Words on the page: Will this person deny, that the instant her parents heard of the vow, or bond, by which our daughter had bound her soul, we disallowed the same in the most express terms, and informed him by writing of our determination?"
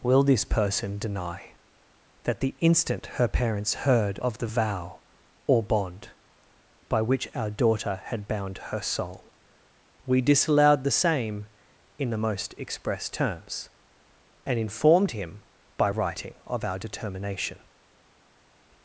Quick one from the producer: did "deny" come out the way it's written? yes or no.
yes